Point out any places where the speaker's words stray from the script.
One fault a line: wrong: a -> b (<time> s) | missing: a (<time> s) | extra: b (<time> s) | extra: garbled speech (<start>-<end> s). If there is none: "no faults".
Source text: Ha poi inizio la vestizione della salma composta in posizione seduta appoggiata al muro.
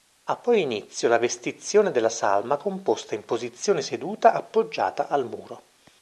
no faults